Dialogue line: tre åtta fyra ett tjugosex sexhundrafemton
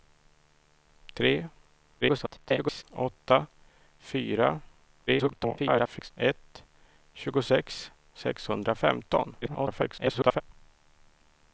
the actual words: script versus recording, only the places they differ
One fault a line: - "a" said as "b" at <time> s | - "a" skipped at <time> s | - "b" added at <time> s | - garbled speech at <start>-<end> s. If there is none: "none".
- garbled speech at 2.0-2.8 s
- garbled speech at 5.1-6.1 s
- garbled speech at 9.4-10.4 s